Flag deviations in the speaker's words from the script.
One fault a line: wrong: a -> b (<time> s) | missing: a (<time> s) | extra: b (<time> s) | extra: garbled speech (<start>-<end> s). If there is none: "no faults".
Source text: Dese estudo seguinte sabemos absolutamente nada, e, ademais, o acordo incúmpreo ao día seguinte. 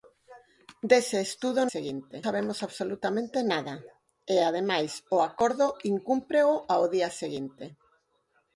no faults